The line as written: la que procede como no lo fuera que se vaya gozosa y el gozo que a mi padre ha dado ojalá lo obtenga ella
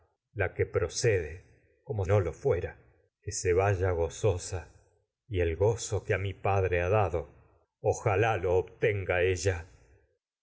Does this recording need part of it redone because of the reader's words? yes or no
no